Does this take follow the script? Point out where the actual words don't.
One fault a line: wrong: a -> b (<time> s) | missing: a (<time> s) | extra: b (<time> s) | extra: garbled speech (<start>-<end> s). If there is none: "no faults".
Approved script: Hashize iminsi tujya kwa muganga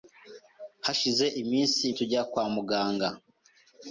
no faults